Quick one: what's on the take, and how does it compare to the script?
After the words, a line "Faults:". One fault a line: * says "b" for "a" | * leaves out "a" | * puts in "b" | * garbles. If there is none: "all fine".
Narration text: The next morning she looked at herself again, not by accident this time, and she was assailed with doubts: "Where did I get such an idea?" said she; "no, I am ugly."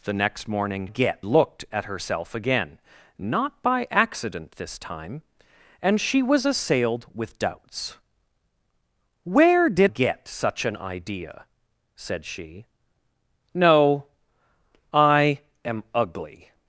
The next morning get looked at herself again, not by accident this time, and she was assailed with doubts: "Where did get such an idea?" said she; "no, I am ugly."
Faults:
* says "get" for "she"
* leaves out "I"